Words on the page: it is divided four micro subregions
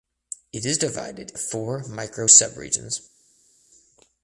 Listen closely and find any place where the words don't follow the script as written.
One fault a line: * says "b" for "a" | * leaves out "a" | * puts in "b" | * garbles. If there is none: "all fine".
all fine